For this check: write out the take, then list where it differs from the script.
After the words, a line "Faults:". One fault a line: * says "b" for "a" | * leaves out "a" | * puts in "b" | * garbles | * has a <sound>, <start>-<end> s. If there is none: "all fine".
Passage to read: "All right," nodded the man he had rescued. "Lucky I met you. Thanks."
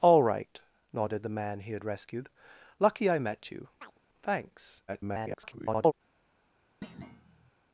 "All right," nodded the man he had rescued. "Lucky I met you. Thanks." [garbled]
Faults:
* has a chirp, 3.8-4.0 s
* garbles
* has a thud, 6.8-7.5 s